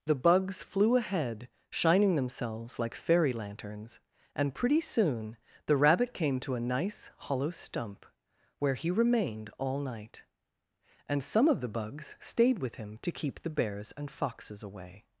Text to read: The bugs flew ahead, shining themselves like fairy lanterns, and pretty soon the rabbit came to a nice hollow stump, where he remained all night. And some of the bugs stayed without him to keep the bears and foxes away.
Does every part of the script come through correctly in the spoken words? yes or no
no